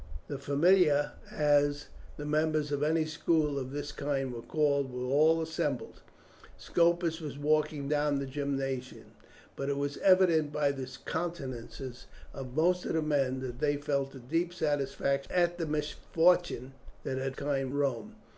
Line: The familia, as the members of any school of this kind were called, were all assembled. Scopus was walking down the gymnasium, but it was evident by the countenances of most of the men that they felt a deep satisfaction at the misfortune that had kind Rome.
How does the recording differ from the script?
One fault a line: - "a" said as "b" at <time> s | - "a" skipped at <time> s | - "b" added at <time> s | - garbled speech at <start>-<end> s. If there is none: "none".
none